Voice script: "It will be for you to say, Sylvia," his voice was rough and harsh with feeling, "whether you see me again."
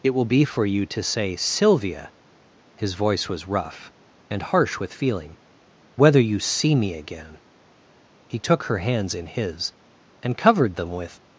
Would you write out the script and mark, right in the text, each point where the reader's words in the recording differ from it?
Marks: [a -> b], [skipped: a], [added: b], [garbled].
"It will be for you to say, Sylvia," his voice was rough and harsh with feeling, "whether you see me again." [added: He took her hands in his and covered them with]